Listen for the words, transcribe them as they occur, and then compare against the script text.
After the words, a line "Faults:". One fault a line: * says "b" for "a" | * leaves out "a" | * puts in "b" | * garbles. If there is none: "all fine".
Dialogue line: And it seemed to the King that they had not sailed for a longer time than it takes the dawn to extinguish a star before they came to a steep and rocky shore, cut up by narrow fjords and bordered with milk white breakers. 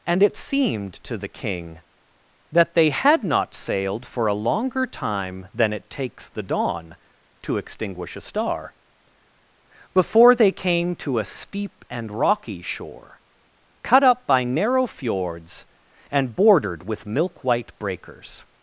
And it seemed to the King that they had not sailed for a longer time than it takes the dawn to extinguish a star before they came to a steep and rocky shore, cut up by narrow fjords and bordered with milk white breakers.
Faults:
all fine